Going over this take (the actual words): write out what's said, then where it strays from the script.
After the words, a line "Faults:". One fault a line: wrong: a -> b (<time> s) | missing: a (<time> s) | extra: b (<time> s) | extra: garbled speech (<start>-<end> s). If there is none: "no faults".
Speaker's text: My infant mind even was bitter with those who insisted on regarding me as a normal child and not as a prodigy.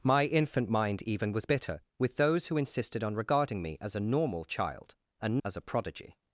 My infant mind even was bitter with those who insisted on regarding me as a normal child and as a prodigy.
Faults:
missing: not (5.4 s)